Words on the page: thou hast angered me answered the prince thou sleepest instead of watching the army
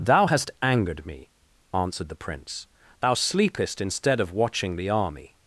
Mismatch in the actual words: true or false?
false